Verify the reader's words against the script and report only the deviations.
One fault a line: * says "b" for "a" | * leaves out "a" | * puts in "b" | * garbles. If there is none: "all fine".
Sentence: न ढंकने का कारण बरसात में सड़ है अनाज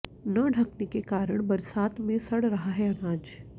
* says "के" for "का"
* puts in "रहा"